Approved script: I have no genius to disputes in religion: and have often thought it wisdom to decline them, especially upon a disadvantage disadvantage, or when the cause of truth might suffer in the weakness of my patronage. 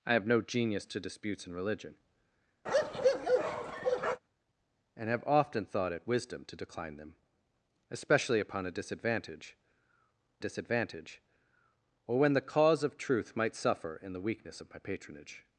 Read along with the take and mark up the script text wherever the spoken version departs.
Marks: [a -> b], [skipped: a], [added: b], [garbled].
I have no genius to disputes in religion: and have often thought it wisdom to decline them, especially upon a disadvantage disadvantage, or when the cause of truth might suffer in the weakness of my patronage.